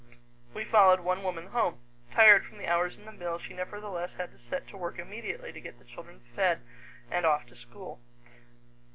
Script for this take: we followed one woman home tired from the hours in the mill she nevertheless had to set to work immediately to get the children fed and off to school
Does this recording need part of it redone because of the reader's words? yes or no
no